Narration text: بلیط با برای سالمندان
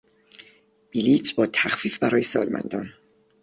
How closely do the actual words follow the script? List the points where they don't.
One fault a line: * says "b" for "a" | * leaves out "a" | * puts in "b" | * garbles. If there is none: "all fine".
* puts in "تخفیف"